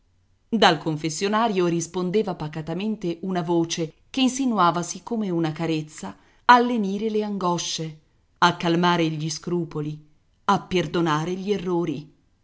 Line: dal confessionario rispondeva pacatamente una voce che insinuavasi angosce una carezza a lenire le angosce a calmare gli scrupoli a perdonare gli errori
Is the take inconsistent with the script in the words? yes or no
yes